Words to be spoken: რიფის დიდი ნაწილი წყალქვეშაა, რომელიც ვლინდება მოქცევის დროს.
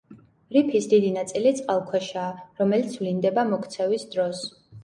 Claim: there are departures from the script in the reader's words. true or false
false